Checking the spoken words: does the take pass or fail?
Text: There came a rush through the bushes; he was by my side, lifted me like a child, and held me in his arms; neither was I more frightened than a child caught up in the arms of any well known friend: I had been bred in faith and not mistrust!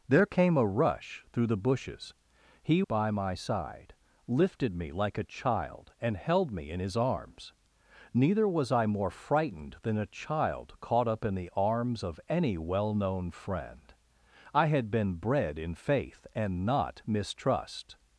fail